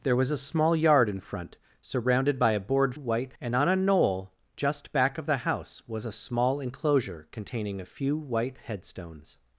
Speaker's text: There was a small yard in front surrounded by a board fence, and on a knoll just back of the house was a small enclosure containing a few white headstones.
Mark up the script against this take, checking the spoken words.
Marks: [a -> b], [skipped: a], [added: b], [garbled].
There was a small yard in front surrounded by a board [fence, -> white] and on a knoll just back of the house was a small enclosure containing a few white headstones.